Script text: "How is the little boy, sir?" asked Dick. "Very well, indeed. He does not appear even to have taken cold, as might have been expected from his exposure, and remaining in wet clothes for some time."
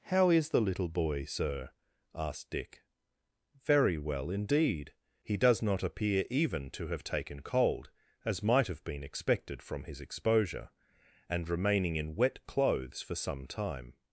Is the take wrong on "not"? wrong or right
right